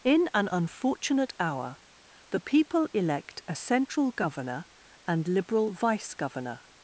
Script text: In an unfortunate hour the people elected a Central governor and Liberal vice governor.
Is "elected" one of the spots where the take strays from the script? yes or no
yes